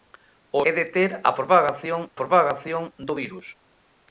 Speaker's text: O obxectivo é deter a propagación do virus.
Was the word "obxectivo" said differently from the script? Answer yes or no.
yes